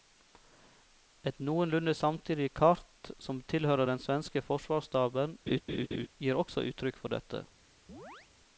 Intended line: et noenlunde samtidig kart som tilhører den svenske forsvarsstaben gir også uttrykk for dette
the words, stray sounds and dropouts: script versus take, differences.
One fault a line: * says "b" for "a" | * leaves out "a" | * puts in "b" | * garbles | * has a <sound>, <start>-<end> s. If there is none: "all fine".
* has a laugh, 5.5-6.1 s
* has a chirp, 7.9-8.3 s